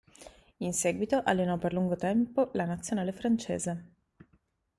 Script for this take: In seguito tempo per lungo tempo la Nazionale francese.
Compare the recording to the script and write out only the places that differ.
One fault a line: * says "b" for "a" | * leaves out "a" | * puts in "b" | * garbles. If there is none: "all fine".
* says "allenò" for "tempo"